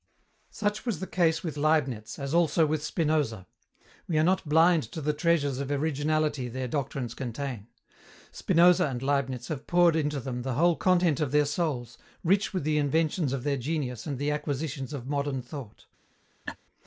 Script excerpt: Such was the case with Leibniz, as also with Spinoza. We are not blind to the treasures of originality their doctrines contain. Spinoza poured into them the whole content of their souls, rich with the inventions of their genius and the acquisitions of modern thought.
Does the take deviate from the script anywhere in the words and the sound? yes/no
yes